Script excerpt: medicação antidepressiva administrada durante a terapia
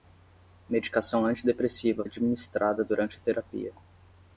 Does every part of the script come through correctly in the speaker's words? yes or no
yes